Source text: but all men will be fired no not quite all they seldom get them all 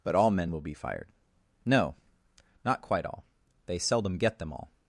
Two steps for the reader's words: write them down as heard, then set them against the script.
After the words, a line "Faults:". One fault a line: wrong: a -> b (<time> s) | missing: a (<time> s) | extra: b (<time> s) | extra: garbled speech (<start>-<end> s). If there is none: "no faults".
but all men will be fired no not quite all they seldom get them all
Faults:
no faults